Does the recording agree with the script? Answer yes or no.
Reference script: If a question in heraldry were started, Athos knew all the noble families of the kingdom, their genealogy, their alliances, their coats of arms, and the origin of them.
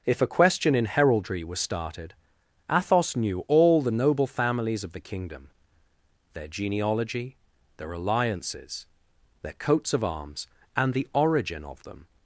no